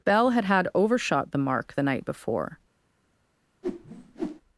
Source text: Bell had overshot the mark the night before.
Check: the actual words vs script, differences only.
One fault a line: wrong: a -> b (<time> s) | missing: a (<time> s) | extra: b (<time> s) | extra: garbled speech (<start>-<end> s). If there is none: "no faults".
extra: had (0.5 s)